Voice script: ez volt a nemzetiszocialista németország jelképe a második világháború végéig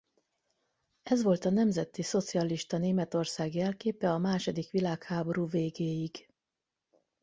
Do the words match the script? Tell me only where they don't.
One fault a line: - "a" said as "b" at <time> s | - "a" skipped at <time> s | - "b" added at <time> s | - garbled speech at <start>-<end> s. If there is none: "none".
none